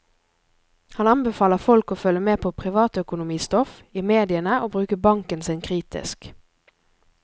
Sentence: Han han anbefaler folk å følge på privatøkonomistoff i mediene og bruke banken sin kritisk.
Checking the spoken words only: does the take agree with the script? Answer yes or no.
no